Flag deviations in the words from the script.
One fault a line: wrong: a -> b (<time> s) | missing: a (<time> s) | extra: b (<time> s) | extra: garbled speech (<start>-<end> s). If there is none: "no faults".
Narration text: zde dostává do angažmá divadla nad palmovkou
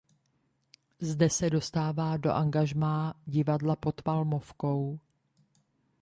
extra: se (1.3 s)
wrong: nad -> pod (3.8 s)